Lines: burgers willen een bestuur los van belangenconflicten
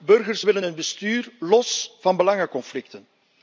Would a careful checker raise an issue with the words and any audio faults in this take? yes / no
no